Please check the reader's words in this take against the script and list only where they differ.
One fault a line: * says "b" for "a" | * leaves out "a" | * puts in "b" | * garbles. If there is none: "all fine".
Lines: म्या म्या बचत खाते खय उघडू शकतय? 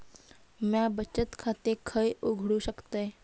* leaves out "म्या"